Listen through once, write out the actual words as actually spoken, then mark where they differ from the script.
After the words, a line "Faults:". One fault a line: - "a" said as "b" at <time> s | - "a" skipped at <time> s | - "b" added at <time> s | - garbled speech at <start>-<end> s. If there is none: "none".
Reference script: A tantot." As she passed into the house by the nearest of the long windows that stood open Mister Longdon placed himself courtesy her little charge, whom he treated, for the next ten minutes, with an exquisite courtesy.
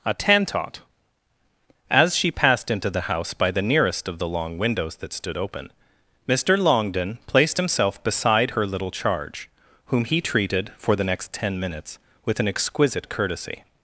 A tantot." As she passed into the house by the nearest of the long windows that stood open Mister Longdon placed himself beside her little charge, whom he treated, for the next ten minutes, with an exquisite courtesy.
Faults:
- "courtesy" said as "beside" at 8.0 s